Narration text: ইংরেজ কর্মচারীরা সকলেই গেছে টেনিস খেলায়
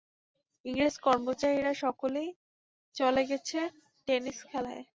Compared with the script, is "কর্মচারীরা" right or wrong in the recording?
right